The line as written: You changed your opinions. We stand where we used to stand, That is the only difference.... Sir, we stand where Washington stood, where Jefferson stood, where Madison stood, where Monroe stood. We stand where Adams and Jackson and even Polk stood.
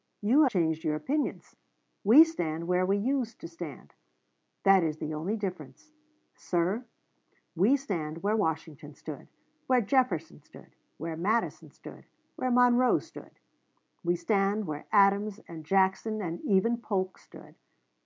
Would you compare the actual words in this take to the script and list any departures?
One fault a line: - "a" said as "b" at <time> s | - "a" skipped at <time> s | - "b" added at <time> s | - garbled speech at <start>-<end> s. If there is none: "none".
none